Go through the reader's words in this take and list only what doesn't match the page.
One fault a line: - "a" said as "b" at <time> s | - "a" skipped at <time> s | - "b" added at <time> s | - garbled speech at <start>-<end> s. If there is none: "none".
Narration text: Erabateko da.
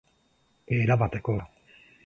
none